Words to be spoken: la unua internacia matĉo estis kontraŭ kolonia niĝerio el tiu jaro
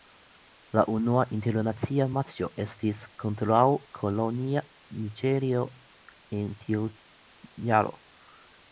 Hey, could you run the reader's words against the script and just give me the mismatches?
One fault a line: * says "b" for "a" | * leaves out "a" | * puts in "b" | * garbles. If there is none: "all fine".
* says "en" for "el"